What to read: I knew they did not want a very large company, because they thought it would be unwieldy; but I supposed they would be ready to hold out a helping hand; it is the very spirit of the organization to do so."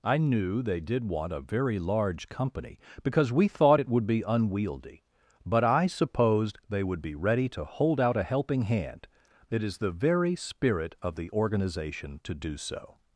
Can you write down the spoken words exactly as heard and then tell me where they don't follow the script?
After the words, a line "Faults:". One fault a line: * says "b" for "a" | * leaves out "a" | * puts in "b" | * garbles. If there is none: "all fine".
I knew they did want a very large company, because we thought it would be unwieldy; but I supposed they would be ready to hold out a helping hand; it is the very spirit of the organization to do so."
Faults:
* leaves out "not"
* says "we" for "they"